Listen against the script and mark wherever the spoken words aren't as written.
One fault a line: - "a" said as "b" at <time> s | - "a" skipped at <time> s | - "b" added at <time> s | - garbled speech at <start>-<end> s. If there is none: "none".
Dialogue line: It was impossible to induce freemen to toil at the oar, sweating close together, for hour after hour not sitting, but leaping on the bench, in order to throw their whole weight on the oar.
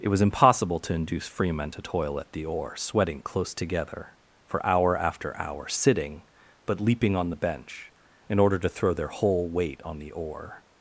- "not" skipped at 5.7 s